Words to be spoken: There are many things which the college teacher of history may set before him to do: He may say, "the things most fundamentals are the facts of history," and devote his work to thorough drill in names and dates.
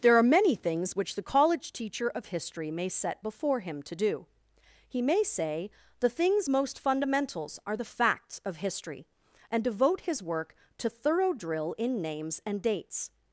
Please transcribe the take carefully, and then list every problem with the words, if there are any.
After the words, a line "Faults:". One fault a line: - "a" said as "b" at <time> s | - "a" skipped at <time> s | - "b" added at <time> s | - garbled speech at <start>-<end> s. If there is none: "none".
There are many things which the college teacher of history may set before him to do: He may say, "the things most fundamentals are the facts of history," and devote his work to thorough drill in names and dates.
Faults:
none